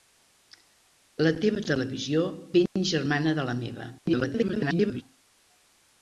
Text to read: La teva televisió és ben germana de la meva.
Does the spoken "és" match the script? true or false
false